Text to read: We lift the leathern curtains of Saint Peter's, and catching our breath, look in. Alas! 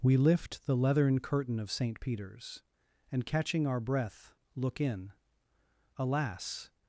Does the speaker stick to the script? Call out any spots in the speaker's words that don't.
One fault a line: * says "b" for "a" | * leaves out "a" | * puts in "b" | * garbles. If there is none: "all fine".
* says "curtain" for "curtains"